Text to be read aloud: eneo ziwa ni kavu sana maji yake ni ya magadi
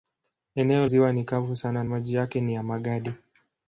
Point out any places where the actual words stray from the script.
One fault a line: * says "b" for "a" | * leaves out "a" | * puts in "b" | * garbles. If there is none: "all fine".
all fine